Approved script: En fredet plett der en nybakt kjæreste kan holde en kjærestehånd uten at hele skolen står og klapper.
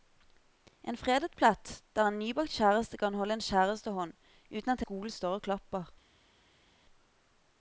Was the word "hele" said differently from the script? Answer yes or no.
yes